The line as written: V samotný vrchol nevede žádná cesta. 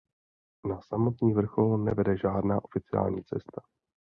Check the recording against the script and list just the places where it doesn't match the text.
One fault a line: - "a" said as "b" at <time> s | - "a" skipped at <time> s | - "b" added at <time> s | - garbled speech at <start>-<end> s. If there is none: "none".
- "V" said as "Na" at 0.7 s
- "oficiální" added at 2.6 s